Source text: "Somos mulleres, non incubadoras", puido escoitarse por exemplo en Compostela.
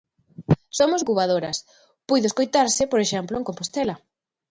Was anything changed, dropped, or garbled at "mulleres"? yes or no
yes